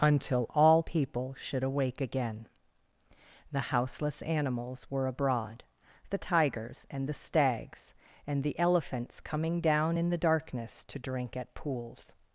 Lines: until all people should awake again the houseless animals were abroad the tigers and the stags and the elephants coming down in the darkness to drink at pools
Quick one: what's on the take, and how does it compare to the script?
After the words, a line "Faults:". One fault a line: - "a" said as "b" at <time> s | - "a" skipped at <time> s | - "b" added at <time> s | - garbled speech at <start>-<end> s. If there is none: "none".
until all people should awake again the houseless animals were abroad the tigers and the stags and the elephants coming down in the darkness to drink at pools
Faults:
none